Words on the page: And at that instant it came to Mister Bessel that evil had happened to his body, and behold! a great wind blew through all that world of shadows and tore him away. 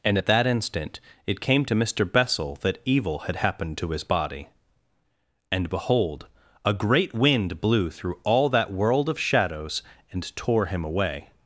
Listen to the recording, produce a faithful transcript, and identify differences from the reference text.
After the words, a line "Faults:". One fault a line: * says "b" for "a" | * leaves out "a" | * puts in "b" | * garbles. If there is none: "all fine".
And at that instant it came to Mister Bessel that evil had happened to his body, and behold! a great wind blew through all that world of shadows and tore him away.
Faults:
all fine